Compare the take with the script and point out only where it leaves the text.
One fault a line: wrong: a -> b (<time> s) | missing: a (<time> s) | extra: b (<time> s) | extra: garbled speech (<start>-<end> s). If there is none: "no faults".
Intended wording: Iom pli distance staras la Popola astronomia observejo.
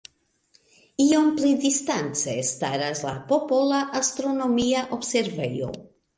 no faults